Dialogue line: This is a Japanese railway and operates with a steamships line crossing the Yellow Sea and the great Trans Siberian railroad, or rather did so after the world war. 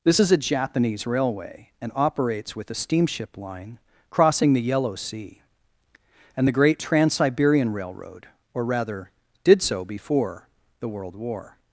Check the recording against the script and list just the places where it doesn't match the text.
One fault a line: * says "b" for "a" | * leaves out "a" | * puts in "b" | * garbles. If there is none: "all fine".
* says "steamship" for "steamships"
* says "before" for "after"